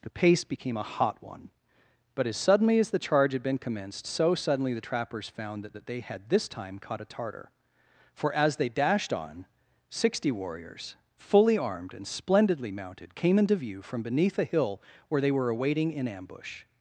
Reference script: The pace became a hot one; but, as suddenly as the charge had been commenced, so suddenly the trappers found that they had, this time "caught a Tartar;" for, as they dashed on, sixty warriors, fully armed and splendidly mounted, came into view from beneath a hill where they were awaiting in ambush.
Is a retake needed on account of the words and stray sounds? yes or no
yes